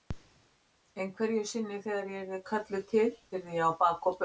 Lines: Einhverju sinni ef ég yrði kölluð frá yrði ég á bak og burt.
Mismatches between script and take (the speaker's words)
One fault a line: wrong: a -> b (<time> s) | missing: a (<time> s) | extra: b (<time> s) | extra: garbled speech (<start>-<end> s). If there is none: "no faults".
wrong: ef -> þegar (1.9 s)
wrong: frá -> til (2.9 s)